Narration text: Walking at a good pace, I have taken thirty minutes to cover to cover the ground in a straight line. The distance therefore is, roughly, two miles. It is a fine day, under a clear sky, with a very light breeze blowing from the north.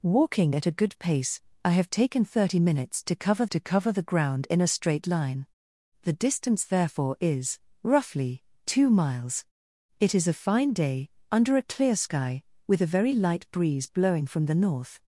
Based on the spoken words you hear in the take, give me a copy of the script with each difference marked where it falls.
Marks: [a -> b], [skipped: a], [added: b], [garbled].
Walking at a good pace, I have taken thirty minutes to cover to cover the ground in a straight line. The distance therefore is, roughly, two miles. It is a fine day, under a clear sky, with a very light breeze blowing from the north.